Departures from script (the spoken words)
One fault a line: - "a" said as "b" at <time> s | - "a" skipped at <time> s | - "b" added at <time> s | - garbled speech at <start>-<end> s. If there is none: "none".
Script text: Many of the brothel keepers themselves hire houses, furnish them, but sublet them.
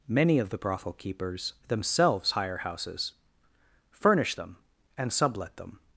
- "but" said as "and" at 5.0 s